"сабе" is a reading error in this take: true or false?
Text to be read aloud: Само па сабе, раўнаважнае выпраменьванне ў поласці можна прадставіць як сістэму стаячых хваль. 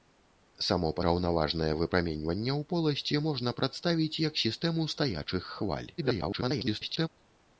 true